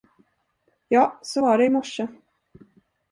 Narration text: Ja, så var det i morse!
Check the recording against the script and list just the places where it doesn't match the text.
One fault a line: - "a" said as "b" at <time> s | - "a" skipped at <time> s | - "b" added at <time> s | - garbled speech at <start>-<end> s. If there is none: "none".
none